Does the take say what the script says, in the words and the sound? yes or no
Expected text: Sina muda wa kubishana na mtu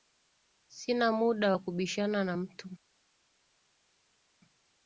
yes